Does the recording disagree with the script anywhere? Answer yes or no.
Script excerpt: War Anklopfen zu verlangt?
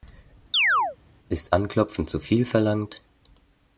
yes